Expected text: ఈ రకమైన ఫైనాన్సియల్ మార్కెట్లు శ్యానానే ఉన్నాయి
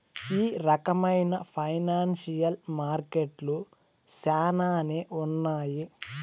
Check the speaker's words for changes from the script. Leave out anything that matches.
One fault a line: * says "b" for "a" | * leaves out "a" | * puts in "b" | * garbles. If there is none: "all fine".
all fine